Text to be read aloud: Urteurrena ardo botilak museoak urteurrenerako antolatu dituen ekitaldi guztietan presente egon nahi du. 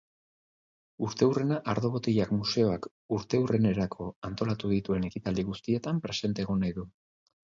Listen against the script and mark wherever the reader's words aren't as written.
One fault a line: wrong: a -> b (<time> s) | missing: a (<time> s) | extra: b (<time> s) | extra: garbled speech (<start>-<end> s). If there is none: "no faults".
no faults